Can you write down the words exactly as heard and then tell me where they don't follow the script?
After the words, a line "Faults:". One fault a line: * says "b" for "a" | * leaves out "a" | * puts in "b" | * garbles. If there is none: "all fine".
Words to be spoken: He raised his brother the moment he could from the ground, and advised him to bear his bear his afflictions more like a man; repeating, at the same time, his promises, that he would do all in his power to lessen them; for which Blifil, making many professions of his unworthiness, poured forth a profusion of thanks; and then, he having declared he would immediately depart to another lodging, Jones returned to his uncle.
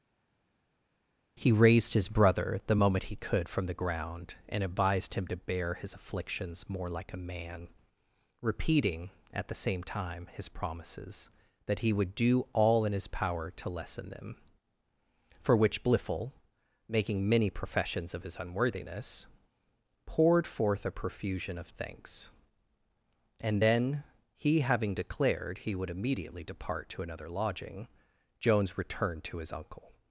He raised his brother the moment he could from the ground, and advised him to bear his afflictions more like a man; repeating, at the same time, his promises, that he would do all in his power to lessen them; for which Blifil, making many professions of his unworthiness, poured forth a profusion of thanks; and then, he having declared he would immediately depart to another lodging, Jones returned to his uncle.
Faults:
* leaves out "bear his"